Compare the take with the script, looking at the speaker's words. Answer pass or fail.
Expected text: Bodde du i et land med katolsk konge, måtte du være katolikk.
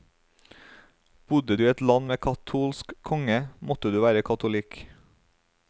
pass